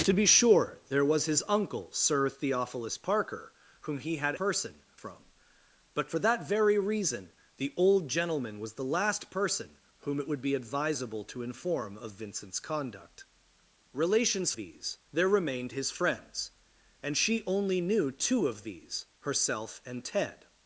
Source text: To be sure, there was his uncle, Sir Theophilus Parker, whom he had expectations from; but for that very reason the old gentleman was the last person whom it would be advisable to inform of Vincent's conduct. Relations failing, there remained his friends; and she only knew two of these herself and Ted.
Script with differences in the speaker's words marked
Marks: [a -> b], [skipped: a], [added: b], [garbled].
To be sure, there was his uncle, Sir Theophilus Parker, whom he had [expectations -> person] from; but for that very reason the old gentleman was the last person whom it would be advisable to inform of Vincent's conduct. Relations [failing, -> these] there remained his friends; and she only knew two of these herself and Ted.